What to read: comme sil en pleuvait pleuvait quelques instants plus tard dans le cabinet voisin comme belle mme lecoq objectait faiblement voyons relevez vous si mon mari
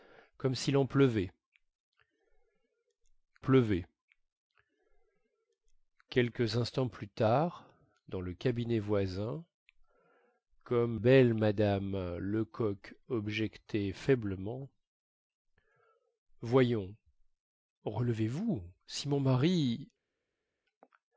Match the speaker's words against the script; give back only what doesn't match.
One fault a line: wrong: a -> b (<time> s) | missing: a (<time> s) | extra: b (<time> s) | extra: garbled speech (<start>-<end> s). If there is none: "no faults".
no faults